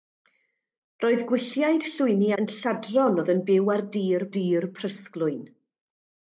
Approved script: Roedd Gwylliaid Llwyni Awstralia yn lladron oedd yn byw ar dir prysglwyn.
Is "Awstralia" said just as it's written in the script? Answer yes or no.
no